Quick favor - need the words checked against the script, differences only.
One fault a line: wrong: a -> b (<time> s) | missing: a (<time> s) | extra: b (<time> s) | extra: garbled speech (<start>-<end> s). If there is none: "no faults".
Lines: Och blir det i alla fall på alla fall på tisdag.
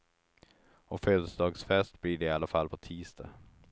extra: födelsedagsfest (1.0 s)
missing: alla fall på (2.8 s)